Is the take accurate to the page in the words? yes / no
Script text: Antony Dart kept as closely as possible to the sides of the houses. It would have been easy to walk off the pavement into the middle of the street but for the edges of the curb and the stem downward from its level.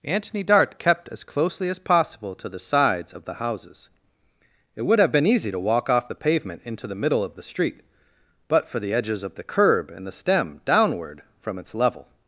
yes